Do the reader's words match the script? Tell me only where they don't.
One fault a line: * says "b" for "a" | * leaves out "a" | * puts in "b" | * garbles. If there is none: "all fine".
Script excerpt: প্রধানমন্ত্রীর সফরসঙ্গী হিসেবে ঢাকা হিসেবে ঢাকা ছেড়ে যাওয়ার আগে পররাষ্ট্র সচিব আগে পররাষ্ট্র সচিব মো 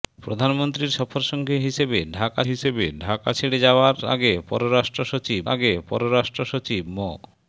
all fine